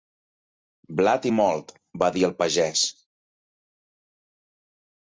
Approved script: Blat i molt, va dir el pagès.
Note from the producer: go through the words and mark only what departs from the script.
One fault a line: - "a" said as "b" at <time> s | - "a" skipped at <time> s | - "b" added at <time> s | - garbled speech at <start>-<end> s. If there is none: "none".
none